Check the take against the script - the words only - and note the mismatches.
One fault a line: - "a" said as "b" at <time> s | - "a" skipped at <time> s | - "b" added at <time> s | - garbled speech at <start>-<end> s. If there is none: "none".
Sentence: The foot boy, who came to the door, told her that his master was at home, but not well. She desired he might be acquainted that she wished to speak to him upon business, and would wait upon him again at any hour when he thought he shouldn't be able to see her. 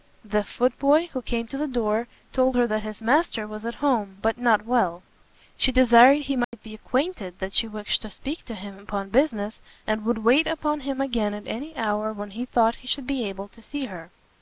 - "shouldn't" said as "should" at 12.9 s